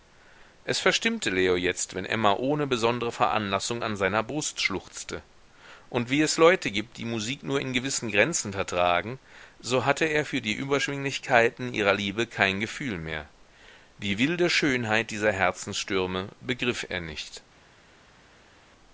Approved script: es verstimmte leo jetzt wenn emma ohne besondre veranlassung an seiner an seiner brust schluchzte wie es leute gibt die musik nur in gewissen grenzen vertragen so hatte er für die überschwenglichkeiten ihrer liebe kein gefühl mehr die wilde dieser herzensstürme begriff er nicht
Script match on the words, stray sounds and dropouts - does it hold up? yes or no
no